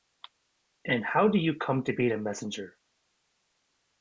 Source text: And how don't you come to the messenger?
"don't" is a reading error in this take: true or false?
true